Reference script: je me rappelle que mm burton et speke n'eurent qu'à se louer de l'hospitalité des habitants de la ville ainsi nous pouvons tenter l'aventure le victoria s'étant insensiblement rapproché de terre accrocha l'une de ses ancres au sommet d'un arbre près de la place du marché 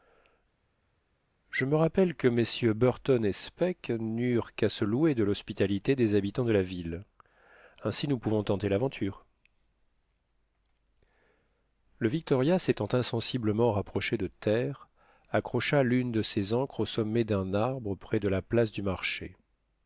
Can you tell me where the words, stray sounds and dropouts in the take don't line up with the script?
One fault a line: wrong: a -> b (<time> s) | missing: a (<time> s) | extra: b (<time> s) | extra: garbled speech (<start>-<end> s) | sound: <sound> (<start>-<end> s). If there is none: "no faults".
no faults